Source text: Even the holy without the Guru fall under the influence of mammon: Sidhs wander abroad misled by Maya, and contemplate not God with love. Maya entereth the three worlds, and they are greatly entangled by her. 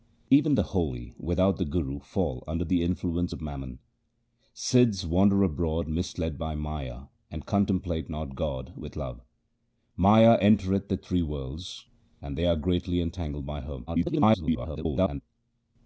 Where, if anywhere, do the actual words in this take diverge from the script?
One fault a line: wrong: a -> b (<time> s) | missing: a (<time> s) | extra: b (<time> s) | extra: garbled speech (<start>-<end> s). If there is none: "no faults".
extra: garbled speech (13.9-15.2 s)